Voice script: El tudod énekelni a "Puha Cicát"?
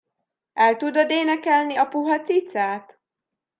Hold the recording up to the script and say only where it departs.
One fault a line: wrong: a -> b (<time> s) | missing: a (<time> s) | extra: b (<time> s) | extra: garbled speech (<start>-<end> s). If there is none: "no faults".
no faults